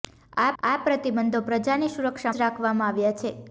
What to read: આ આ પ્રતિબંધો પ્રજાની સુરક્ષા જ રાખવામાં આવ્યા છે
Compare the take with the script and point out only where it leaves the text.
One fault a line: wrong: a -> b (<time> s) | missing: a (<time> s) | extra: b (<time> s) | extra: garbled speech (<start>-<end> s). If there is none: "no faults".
no faults